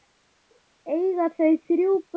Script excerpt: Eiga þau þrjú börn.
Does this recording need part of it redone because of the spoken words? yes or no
no